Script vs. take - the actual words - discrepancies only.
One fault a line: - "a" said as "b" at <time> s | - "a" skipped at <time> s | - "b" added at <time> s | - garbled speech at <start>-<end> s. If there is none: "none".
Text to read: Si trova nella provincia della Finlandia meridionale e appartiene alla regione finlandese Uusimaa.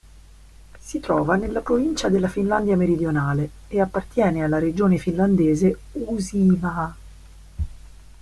none